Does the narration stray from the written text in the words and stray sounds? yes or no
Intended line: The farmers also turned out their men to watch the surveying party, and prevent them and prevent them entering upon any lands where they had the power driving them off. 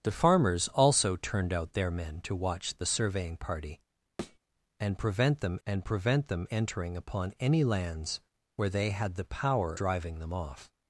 yes